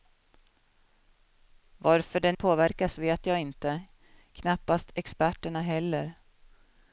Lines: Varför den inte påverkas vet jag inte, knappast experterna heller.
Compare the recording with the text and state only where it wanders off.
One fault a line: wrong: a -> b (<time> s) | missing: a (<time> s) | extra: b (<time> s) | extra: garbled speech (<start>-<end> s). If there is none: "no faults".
missing: inte (2.4 s)